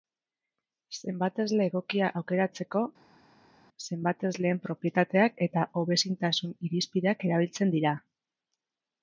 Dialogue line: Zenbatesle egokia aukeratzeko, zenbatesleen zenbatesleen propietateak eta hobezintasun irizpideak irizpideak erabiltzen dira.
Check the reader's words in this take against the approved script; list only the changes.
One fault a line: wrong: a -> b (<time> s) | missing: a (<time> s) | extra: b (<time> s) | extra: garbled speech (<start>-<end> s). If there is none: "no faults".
missing: zenbatesleen (4.6 s)
missing: irizpideak (7.3 s)